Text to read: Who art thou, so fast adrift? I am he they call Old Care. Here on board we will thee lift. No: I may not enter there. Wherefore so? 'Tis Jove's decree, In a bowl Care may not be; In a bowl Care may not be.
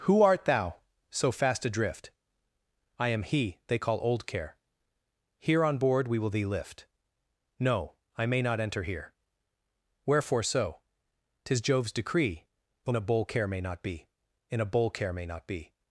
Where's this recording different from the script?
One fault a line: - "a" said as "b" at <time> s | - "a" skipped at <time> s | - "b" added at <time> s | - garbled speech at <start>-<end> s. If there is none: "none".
- "there" said as "here" at 8.8 s